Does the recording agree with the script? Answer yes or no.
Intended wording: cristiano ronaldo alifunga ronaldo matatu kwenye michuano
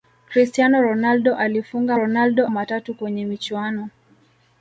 yes